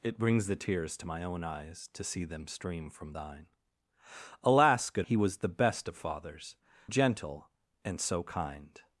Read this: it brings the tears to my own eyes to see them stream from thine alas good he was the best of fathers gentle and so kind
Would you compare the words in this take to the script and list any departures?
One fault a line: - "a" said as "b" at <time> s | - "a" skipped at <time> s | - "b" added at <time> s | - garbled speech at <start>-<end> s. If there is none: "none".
none